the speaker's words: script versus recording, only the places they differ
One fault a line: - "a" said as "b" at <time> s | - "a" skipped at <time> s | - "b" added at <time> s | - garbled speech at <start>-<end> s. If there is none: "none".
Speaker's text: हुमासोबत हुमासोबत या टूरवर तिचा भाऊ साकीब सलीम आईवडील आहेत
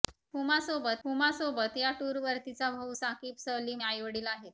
none